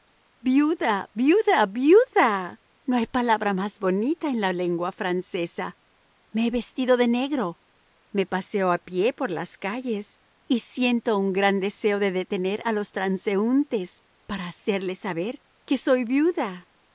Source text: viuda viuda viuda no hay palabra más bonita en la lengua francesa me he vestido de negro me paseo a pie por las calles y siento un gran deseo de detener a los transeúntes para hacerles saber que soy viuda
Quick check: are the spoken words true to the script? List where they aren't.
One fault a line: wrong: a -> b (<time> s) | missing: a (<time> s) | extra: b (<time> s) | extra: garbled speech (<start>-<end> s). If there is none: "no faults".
no faults